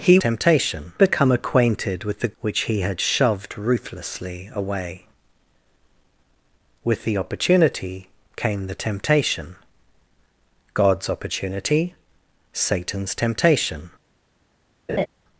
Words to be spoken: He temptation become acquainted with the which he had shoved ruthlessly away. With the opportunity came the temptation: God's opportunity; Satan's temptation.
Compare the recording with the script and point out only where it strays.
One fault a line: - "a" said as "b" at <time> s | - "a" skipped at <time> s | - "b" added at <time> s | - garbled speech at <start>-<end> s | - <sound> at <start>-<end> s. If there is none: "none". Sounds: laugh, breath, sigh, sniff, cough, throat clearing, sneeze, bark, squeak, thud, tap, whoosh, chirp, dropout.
- laugh at 14.9-15.1 s